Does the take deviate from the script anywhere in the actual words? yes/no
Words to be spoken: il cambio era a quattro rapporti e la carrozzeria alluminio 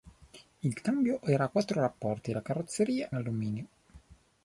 no